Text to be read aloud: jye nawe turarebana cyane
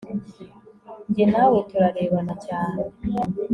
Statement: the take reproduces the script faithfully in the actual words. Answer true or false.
true